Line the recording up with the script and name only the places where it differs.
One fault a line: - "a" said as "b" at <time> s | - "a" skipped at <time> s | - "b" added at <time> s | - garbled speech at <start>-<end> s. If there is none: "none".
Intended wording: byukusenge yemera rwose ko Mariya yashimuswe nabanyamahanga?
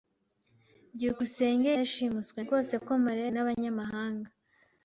- "yemera" said as "yashimuswe" at 1.8 s
- "yashimuswe" skipped at 3.3 s